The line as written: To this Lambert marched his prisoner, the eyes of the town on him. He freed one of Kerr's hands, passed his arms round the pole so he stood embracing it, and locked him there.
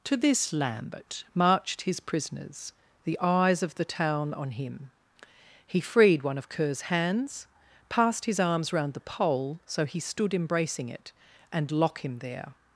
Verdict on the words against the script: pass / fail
fail